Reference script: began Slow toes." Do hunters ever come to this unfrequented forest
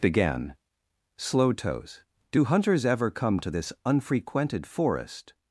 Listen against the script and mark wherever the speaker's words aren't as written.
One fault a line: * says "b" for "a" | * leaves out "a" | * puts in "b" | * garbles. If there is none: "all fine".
all fine